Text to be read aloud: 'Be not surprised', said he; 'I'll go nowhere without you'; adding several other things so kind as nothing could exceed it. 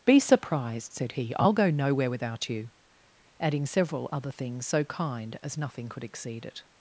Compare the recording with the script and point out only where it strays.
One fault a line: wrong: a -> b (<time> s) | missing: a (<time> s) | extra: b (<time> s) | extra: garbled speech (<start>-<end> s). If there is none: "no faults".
missing: not (0.2 s)